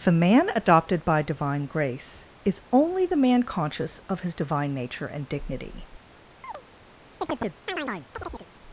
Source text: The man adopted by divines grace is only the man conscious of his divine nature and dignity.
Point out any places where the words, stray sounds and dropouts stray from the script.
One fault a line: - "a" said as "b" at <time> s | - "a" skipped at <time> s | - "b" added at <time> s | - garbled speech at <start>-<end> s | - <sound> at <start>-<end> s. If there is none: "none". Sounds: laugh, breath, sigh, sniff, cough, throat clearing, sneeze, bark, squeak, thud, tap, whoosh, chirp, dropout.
- "divines" said as "divine" at 1.2 s
- chirp at 6.4-6.6 s
- chirp at 7.2-8.5 s